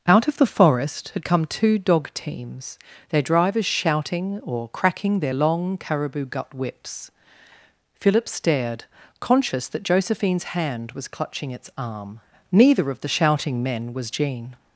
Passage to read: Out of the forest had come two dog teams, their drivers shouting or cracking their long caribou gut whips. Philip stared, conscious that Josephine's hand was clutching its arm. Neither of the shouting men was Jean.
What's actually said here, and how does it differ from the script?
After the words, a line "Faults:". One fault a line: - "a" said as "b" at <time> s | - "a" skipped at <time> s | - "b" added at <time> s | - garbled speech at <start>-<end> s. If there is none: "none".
Out of the forest had come two dog teams, their drivers shouting or cracking their long caribou gut whips. Philip stared, conscious that Josephine's hand was clutching its arm. Neither of the shouting men was Jean.
Faults:
none